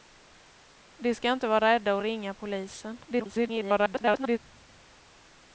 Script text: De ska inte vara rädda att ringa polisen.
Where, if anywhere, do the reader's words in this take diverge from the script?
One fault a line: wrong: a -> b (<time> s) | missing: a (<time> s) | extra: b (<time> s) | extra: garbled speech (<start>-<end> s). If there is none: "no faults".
extra: garbled speech (3.0-4.4 s)